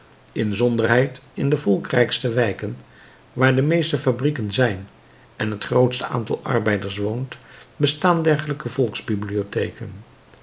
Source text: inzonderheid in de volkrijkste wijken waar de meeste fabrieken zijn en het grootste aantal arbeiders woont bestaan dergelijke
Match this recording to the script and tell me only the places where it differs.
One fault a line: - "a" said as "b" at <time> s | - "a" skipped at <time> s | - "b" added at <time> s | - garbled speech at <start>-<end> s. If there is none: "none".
none